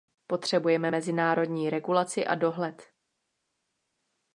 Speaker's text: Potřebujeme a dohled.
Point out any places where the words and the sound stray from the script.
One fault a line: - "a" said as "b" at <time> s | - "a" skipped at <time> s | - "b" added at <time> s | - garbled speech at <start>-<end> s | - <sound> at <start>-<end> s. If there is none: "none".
- "mezinárodní regulaci" added at 0.9 s